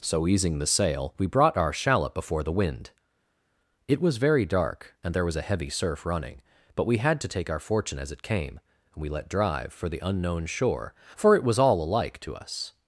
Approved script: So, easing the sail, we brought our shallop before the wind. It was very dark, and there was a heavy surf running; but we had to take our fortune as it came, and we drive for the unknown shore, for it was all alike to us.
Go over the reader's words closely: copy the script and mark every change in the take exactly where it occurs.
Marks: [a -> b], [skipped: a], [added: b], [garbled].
So, easing the sail, we brought our shallop before the wind. It was very dark, and there was a heavy surf running; but we had to take our fortune as it came, and we [added: let] drive for the unknown shore, for it was all alike to us.